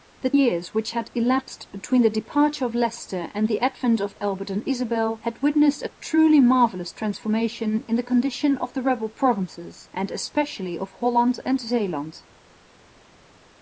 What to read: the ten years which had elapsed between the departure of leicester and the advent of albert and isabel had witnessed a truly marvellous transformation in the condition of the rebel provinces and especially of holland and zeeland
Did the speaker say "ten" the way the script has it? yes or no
no